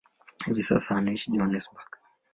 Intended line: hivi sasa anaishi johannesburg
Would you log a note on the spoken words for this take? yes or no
no